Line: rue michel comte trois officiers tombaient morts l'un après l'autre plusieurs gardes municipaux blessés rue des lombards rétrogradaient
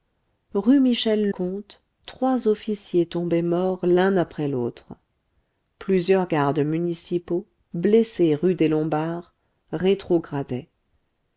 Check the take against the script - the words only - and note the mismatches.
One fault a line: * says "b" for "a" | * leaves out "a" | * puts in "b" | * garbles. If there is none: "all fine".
all fine